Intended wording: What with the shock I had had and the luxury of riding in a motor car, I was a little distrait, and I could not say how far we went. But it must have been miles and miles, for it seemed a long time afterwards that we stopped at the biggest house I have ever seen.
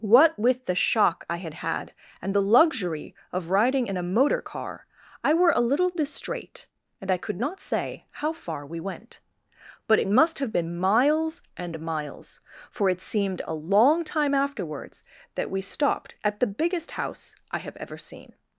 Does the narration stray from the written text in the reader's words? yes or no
yes